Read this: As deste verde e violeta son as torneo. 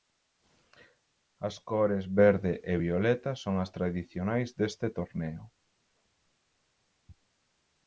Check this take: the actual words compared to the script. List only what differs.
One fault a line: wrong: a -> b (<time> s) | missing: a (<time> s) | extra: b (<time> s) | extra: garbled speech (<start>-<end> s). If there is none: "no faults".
wrong: deste -> cores (1.7 s)
extra: tradicionais deste (3.8 s)